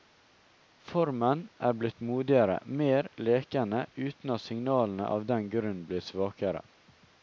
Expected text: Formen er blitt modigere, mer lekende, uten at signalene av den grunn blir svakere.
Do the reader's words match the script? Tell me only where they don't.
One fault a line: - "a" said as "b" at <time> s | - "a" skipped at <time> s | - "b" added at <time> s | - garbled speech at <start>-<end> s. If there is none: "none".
none